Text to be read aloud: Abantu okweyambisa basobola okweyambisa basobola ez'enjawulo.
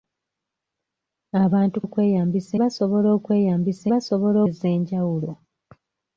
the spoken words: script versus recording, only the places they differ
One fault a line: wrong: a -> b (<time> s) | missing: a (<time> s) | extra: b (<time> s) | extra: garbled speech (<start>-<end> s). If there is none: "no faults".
no faults